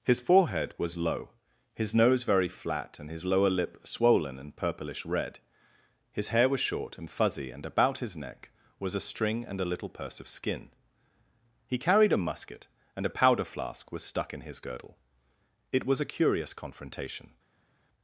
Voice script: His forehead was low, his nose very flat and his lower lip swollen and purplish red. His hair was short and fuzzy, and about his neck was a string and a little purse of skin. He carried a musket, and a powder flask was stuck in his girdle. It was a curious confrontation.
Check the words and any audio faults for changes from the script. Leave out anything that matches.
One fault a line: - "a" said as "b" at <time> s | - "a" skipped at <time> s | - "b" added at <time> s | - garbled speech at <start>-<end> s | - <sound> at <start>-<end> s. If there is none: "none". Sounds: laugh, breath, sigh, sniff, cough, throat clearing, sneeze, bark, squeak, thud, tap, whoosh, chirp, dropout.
none